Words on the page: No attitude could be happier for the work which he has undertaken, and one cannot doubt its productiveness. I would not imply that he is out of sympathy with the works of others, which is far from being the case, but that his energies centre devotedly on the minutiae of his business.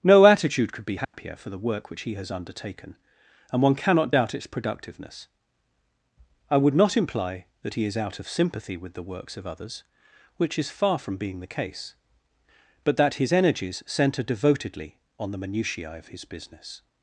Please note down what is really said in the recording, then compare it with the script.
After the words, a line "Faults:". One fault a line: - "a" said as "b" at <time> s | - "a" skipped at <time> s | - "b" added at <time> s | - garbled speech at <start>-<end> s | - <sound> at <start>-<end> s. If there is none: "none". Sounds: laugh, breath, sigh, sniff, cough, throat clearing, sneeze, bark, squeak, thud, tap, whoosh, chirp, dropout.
No attitude could be happier for the work which he has undertaken, and one cannot doubt its productiveness. I would not imply that he is out of sympathy with the works of others, which is far from being the case, but that his energies centre devotedly on the minutiae of his business.
Faults:
- dropout at 1.0-1.1 s